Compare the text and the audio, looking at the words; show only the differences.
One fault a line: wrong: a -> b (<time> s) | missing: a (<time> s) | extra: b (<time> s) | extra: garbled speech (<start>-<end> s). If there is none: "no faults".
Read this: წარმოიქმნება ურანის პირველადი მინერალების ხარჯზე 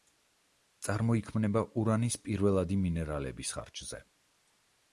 no faults